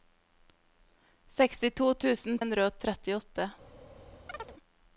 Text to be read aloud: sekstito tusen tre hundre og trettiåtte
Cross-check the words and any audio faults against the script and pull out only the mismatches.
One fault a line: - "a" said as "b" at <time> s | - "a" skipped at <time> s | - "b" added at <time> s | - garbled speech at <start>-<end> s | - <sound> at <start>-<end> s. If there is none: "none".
- "tre" skipped at 2.4 s
- chirp at 4.3-4.5 s